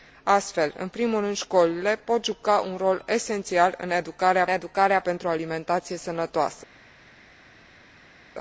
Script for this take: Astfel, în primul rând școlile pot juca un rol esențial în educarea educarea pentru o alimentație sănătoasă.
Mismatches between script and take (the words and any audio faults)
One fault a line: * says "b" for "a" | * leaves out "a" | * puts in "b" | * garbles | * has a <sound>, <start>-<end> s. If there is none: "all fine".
all fine